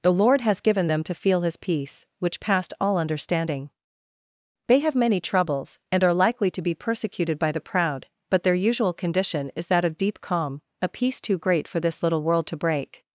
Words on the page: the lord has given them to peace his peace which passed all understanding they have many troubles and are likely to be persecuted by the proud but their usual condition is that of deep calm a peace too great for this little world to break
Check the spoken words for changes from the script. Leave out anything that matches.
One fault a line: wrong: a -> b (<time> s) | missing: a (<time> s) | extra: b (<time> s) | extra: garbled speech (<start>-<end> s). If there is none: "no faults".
wrong: peace -> feel (1.1 s)